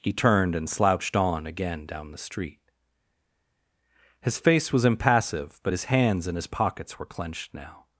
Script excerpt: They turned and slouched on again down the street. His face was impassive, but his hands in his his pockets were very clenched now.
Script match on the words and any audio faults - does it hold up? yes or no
no